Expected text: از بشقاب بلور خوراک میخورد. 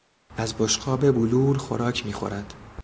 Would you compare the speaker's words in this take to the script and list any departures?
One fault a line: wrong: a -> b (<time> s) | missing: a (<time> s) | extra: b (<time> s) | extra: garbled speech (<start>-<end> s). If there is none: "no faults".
no faults